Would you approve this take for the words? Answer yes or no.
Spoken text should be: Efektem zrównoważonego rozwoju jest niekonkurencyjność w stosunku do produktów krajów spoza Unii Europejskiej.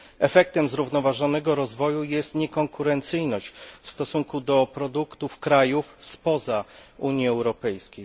yes